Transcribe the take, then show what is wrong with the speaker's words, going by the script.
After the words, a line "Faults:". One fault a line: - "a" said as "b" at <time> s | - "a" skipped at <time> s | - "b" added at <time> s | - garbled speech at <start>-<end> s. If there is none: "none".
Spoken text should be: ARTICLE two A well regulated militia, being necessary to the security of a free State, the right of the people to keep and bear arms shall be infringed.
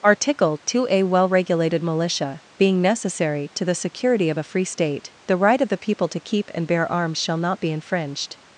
ARTICLE two A well regulated militia, being necessary to the security of a free State, the right of the people to keep and bear arms shall not be infringed.
Faults:
- "not" added at 7.4 s